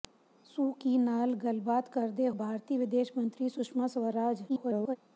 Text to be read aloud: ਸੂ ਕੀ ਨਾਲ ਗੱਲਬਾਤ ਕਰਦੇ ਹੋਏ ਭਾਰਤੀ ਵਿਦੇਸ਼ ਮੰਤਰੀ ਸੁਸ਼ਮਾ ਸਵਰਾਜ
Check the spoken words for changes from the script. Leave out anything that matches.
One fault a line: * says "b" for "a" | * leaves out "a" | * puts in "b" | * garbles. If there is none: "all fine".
* leaves out "ਹੋਏ"
* garbles